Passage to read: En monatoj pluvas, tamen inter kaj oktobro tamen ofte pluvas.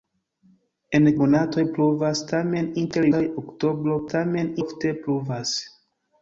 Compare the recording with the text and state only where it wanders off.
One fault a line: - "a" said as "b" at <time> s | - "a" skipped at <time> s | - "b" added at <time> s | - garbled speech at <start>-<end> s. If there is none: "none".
none